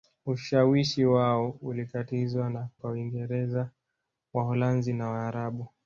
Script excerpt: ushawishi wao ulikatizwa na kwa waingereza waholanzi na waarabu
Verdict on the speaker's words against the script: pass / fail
pass